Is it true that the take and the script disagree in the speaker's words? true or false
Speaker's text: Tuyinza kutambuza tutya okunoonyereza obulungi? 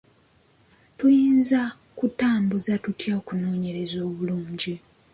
false